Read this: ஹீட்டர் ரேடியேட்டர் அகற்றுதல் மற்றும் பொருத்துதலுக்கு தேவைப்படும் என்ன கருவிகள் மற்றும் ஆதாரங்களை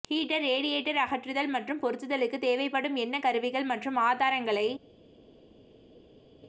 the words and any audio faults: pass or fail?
pass